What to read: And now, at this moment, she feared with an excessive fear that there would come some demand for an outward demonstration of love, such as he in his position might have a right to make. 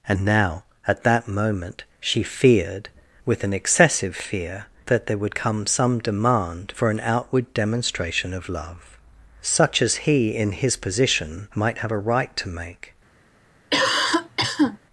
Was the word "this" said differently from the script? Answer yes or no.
yes